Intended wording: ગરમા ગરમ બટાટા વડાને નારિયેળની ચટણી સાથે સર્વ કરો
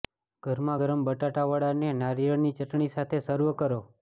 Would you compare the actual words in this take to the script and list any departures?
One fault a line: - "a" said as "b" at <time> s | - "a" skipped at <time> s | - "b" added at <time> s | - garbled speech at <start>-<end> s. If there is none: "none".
none